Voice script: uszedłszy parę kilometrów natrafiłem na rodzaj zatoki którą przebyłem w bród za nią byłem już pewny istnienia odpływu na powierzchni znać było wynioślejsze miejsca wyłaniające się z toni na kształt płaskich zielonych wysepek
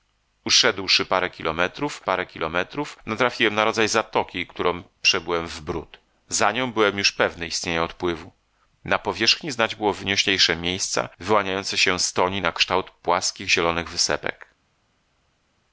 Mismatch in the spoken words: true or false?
true